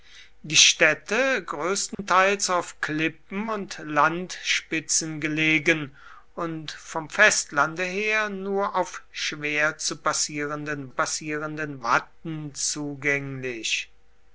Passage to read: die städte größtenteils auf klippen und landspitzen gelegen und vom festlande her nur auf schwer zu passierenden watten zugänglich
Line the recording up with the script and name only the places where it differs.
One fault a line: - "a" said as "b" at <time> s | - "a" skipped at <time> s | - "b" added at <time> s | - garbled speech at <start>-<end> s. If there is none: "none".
- "passierenden" added at 10.9 s